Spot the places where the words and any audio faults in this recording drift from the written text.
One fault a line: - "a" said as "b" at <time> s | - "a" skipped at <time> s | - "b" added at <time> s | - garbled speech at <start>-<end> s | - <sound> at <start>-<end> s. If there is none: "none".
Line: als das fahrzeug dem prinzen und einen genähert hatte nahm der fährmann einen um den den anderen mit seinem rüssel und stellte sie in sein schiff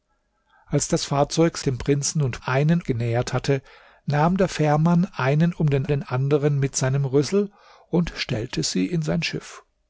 none